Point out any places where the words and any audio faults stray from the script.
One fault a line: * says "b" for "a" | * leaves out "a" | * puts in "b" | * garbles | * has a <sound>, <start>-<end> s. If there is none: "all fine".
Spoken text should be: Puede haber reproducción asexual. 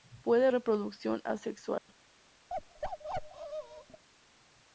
* leaves out "haber"
* has a dropout, 1.8-1.9 s
* has a bark, 2.5-4.0 s